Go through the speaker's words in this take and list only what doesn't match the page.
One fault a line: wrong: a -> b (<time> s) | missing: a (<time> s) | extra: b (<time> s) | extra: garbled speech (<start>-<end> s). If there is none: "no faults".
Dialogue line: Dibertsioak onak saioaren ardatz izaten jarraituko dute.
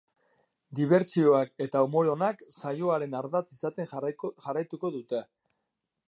extra: eta umore (1.6 s)